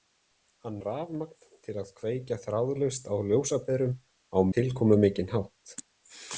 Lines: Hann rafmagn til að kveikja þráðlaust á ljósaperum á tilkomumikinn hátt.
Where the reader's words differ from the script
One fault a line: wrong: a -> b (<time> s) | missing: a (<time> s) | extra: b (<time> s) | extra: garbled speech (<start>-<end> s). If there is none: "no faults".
no faults